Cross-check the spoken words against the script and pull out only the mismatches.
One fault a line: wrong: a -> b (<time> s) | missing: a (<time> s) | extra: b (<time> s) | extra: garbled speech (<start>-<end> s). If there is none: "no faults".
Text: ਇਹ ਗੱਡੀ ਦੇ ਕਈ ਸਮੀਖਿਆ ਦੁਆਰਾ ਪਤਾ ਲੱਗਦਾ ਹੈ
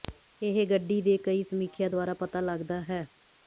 no faults